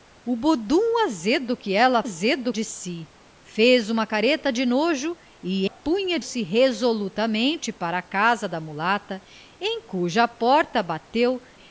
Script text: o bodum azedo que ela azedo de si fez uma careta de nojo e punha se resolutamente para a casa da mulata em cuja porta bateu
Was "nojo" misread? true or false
false